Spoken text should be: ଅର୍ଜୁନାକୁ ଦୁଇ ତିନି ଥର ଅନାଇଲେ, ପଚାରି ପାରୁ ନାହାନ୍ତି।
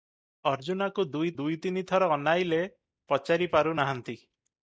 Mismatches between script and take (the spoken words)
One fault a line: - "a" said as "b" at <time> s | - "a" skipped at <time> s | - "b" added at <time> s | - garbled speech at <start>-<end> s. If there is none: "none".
- "ଦୁଇ" added at 1.3 s